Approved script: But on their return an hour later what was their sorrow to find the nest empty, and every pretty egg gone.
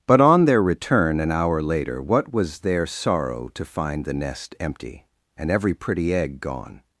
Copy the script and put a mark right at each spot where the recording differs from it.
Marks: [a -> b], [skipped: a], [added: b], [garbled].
But on their return an hour later what was their sorrow to find the nest empty, and every pretty egg gone.